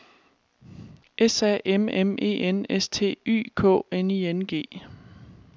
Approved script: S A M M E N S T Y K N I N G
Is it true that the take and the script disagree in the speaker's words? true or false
false